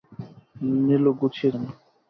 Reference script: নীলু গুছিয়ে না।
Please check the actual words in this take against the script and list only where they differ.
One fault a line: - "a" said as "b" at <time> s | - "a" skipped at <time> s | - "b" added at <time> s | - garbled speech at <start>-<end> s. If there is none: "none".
none